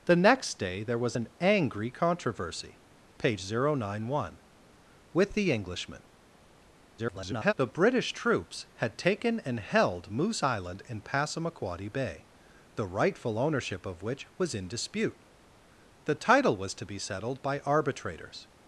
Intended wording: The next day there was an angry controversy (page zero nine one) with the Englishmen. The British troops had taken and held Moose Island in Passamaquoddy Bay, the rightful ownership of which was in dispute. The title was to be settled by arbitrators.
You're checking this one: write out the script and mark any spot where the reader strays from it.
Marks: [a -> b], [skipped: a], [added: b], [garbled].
The next day there was an angry controversy (page zero nine one) with the Englishmen. [garbled] The British troops had taken and held Moose Island in Passamaquoddy Bay, the rightful ownership of which was in dispute. The title was to be settled by arbitrators.